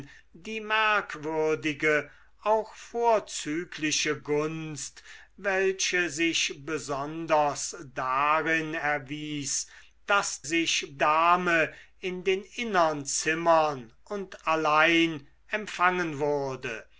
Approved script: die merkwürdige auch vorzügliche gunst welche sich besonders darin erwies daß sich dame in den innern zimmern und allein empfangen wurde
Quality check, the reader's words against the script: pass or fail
pass